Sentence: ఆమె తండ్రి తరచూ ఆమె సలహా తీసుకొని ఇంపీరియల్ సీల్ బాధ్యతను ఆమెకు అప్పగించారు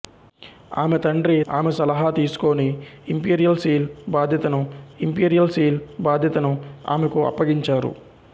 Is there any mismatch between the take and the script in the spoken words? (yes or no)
yes